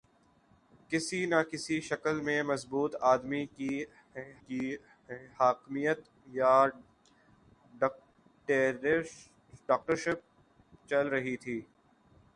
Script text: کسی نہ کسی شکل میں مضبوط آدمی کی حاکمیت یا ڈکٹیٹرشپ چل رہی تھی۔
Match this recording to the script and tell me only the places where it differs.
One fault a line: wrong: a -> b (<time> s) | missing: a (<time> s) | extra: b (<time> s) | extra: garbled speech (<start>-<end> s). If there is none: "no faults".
extra: کی (4.4 s)